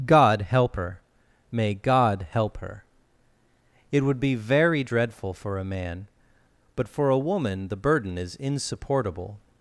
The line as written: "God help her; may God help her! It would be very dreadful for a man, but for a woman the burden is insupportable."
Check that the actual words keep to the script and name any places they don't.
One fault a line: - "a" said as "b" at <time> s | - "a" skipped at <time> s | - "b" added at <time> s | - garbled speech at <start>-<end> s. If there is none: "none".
none